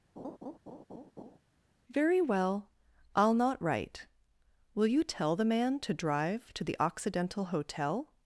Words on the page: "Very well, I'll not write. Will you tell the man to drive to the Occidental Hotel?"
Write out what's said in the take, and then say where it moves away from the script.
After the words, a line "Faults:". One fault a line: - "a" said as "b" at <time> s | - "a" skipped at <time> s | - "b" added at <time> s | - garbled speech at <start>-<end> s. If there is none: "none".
"Very well, I'll not write. Will you tell the man to drive to the Occidental Hotel?"
Faults:
none